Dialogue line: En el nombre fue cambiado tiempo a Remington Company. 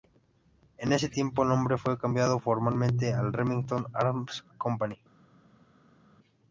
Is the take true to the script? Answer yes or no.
no